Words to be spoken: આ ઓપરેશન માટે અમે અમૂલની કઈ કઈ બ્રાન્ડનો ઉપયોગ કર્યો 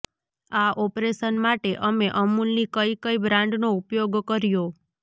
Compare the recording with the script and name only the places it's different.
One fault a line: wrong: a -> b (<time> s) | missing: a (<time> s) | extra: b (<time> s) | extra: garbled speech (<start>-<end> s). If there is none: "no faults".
no faults